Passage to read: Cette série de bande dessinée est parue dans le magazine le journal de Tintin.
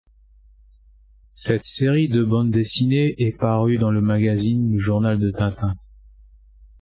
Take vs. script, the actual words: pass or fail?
pass